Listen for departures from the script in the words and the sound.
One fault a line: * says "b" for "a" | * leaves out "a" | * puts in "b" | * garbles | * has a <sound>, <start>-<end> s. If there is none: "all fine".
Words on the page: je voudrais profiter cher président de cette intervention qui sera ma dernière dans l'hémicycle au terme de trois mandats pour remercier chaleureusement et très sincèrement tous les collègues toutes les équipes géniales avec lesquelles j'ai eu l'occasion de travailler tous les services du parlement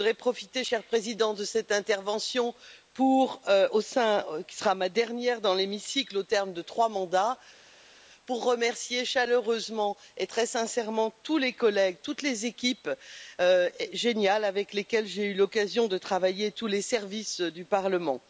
all fine